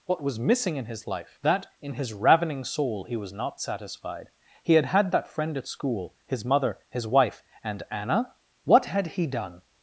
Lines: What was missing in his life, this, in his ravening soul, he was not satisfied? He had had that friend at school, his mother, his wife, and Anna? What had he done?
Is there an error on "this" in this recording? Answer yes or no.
yes